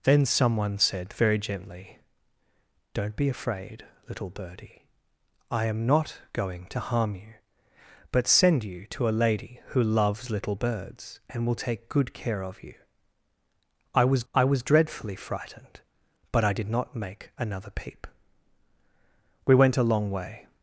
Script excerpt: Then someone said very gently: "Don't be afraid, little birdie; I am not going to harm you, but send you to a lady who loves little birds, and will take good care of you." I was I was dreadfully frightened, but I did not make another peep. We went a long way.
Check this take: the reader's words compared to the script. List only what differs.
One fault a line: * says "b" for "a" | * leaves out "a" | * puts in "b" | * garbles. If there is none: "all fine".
all fine